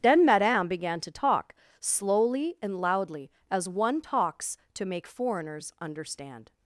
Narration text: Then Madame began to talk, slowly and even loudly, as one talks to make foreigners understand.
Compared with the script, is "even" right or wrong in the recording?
wrong